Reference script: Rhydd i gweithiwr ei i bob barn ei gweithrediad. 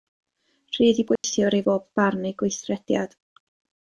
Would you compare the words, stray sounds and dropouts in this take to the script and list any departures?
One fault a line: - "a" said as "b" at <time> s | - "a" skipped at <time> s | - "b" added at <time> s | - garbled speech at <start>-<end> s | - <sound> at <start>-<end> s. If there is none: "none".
- dropout at 1.2-1.2 s